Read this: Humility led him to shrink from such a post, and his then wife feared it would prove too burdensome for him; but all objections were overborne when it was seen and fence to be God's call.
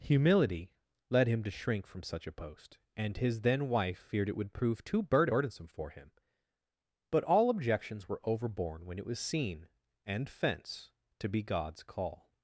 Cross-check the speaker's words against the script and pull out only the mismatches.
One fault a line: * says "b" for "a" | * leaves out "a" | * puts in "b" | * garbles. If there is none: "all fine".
all fine